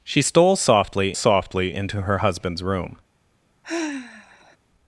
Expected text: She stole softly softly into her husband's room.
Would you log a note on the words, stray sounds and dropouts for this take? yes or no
yes